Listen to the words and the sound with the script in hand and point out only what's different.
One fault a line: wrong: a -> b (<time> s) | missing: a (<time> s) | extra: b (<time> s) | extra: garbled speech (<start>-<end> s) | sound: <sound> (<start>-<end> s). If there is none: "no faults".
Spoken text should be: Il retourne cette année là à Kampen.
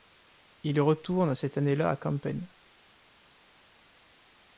no faults